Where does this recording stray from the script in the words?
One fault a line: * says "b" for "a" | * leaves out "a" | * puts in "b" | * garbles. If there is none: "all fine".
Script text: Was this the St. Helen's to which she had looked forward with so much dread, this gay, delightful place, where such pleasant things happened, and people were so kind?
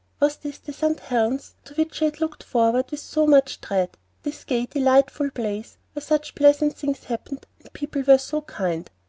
all fine